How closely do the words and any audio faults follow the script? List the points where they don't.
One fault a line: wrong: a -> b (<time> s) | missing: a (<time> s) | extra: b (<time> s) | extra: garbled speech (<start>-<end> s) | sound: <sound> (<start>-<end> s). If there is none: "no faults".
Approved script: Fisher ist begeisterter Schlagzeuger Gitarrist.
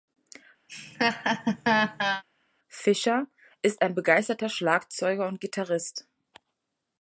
sound: laugh (0.7-2.2 s)
extra: ein (3.8 s)
extra: und (5.3 s)